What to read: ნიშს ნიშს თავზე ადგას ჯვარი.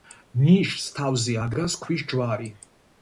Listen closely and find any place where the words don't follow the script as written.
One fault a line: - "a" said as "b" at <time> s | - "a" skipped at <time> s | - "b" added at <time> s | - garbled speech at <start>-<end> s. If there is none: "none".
- "ნიშს" skipped at 0.9 s
- "ქვის" added at 1.8 s